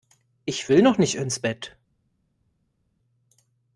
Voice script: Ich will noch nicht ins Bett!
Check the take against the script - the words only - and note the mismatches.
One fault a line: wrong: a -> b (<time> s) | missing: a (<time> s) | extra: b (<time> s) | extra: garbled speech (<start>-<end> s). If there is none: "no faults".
no faults